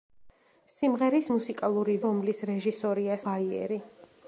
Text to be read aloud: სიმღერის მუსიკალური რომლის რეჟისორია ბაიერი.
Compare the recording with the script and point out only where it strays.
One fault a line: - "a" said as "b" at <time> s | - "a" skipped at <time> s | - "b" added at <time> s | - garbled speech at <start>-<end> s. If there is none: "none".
none